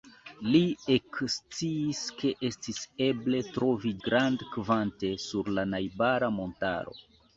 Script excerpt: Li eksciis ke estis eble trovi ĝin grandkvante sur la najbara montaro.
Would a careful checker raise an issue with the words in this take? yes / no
yes